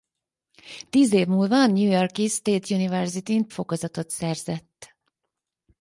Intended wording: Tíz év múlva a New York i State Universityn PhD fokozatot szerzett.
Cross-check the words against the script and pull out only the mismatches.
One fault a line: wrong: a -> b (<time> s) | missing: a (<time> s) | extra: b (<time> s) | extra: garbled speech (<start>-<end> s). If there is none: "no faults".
missing: PhD (3.5 s)